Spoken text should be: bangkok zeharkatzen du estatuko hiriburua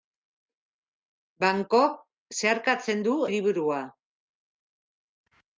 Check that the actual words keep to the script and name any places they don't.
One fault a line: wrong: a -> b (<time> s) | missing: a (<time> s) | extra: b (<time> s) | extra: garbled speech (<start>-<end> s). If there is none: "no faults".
missing: estatuko (3.1 s)